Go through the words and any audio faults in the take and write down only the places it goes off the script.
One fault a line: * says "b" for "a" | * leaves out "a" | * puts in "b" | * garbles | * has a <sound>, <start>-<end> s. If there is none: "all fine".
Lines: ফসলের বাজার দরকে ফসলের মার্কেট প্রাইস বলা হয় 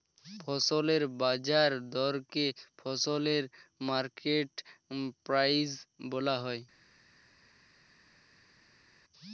all fine